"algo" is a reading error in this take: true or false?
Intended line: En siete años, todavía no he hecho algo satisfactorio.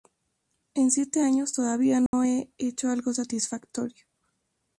false